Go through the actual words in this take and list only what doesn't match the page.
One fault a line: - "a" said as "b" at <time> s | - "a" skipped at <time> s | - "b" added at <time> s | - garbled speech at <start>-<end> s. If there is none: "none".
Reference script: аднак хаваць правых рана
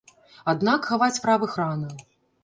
none